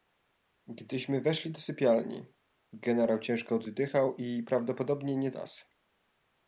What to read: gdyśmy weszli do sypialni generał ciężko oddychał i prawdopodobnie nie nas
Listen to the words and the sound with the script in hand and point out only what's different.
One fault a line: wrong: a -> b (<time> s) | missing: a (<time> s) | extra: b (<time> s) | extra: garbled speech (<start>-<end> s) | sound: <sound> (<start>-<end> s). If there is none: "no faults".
no faults